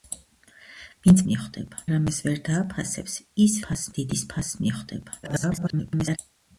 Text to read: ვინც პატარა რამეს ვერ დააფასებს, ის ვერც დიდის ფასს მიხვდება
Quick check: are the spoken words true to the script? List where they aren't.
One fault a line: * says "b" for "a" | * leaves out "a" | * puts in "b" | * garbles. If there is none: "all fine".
* says "მიხვდება" for "პატარა"
* says "ფასს" for "ვერც"
* garbles